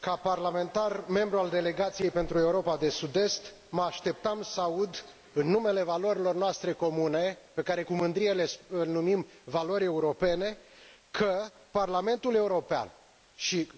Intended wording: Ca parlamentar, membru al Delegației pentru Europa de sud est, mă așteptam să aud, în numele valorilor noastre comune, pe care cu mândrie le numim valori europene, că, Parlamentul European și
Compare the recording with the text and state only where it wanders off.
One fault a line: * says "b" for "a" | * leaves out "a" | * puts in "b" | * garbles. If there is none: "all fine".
all fine